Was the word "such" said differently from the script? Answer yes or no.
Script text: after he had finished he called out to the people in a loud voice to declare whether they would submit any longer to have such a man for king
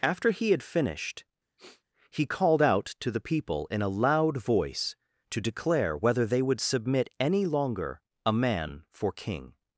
yes